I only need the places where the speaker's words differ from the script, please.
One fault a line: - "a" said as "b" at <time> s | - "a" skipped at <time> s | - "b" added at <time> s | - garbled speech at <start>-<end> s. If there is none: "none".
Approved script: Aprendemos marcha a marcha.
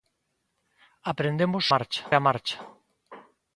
none